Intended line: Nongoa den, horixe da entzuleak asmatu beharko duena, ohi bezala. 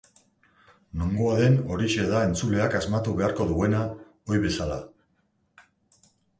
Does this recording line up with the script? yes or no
yes